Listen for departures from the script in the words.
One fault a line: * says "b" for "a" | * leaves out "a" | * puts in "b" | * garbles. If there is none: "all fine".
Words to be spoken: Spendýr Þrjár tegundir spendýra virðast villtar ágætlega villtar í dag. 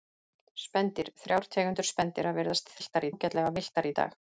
all fine